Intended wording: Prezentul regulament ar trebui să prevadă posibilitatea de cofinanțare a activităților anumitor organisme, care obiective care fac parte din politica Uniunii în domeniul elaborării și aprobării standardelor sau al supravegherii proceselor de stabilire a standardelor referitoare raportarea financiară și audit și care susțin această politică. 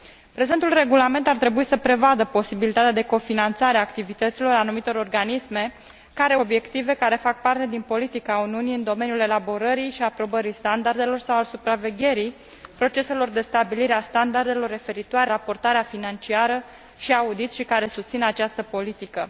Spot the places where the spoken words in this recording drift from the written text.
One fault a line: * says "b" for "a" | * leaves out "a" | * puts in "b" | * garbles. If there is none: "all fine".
all fine